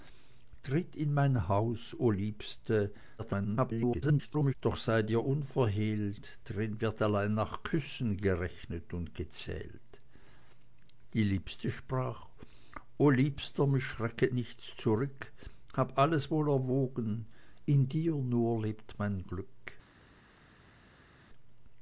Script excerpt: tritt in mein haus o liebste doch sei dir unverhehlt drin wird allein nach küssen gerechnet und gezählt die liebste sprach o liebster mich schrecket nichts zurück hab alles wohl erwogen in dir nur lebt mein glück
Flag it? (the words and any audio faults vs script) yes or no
yes